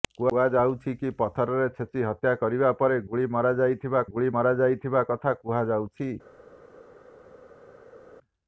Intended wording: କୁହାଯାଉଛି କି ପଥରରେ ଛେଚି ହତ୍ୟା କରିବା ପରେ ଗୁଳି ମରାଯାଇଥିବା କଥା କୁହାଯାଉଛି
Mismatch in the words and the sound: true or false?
true